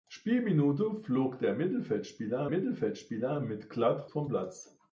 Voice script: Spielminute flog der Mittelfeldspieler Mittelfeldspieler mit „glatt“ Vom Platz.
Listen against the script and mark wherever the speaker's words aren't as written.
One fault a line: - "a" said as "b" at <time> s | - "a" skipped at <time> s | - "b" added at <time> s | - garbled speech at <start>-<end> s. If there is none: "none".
none